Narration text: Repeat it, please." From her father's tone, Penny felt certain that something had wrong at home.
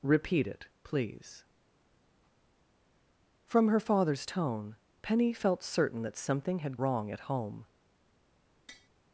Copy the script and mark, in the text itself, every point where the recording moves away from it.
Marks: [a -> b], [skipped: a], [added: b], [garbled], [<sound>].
Repeat it, please." From her father's tone, Penny felt certain that something had wrong at home. [tap]